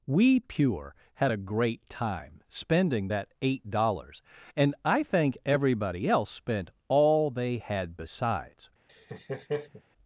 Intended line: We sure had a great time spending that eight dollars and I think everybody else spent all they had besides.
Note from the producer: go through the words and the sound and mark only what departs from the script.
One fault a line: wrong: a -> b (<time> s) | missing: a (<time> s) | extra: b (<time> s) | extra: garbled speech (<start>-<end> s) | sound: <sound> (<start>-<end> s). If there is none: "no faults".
wrong: sure -> pure (0.4 s)
sound: laugh (8.9-9.8 s)